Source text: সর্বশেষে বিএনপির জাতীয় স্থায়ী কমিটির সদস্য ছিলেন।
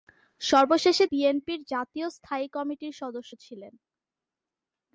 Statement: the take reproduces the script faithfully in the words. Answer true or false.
true